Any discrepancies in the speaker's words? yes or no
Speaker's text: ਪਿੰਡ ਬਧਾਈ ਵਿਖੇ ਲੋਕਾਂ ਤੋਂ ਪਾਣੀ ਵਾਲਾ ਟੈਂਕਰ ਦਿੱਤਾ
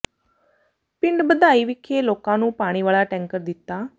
yes